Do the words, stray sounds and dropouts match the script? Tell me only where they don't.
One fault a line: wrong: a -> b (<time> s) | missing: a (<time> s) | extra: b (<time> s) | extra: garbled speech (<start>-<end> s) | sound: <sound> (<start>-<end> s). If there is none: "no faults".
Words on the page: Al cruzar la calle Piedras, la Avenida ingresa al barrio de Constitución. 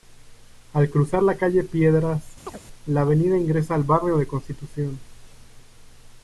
sound: chirp (2.5-2.6 s)